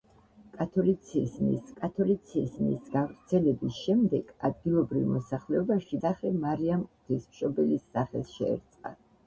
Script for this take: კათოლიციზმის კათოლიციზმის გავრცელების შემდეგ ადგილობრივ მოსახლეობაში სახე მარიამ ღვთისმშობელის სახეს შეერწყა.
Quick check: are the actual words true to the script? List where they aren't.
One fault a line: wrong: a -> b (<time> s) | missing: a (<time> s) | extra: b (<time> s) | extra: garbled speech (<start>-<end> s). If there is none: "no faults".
no faults